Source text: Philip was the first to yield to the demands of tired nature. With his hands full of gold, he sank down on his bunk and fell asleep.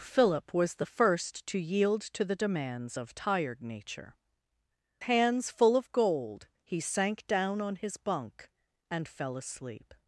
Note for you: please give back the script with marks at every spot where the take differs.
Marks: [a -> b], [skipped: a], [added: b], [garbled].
Philip was the first to yield to the demands of tired nature. [skipped: With his] hands full of gold, he sank down on his bunk and fell asleep.